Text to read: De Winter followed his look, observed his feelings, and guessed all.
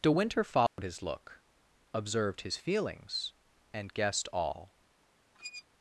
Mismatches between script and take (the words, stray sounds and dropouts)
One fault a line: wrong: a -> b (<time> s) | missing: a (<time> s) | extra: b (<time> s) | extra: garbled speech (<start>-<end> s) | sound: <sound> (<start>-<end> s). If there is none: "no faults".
sound: dropout (0.7-0.8 s)
sound: squeak (5.3-5.6 s)